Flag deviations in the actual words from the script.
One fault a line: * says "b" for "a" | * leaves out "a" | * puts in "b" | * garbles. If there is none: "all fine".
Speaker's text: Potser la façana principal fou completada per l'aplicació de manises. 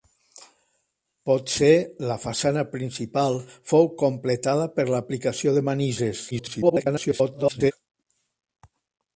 * garbles